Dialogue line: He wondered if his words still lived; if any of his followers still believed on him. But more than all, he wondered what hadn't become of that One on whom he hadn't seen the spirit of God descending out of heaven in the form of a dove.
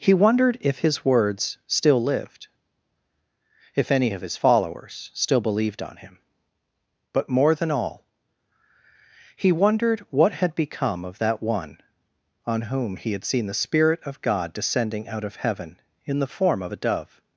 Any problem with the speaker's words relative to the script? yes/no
yes